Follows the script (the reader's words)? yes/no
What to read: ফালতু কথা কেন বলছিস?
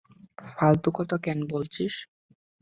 yes